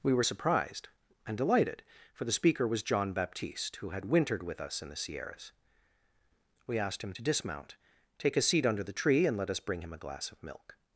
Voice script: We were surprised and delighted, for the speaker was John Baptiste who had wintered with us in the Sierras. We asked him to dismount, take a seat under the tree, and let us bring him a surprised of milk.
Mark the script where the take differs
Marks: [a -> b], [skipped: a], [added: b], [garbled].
We were surprised and delighted, for the speaker was John Baptiste who had wintered with us in the Sierras. We asked him to dismount, take a seat under the tree, and let us bring him a [surprised -> glass] of milk.